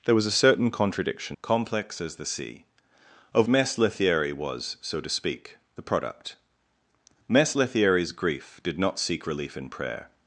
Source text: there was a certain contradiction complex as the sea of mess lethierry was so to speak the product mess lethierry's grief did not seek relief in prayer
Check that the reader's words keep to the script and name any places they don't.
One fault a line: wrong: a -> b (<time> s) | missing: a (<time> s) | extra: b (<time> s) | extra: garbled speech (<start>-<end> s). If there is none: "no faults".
no faults